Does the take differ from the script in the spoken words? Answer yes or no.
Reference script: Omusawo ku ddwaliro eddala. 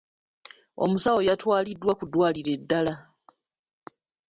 yes